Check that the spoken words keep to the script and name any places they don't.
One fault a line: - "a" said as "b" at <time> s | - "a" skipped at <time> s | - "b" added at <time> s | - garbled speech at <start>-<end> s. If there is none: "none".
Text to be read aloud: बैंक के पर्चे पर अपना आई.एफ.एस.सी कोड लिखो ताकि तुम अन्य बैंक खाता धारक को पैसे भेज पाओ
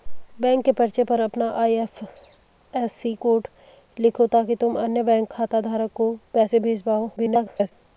- garbled speech at 7.2-7.7 s